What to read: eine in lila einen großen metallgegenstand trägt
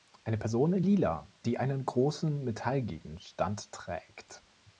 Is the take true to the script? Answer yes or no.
no